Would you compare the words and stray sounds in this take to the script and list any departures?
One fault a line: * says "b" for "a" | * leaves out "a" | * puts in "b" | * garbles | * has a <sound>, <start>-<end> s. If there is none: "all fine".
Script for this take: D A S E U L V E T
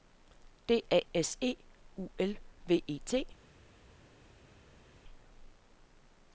all fine